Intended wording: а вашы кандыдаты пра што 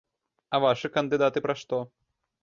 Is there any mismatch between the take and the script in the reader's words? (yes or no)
no